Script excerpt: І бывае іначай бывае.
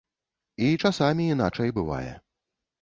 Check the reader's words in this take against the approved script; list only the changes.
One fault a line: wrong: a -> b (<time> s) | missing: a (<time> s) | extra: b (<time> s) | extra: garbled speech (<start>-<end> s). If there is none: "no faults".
wrong: бывае -> часамі (0.8 s)